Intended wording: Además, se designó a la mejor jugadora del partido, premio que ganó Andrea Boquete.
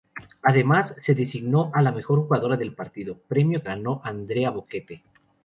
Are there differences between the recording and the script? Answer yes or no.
yes